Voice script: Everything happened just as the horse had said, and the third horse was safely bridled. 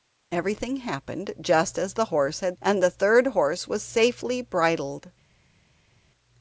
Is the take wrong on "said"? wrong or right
wrong